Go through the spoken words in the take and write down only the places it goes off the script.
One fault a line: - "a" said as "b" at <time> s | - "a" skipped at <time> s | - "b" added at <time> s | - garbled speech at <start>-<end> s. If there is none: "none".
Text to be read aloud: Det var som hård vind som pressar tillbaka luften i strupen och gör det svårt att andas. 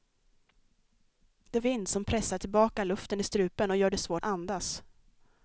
- "var som hård" skipped at 1.6 s
- "att" skipped at 4.2 s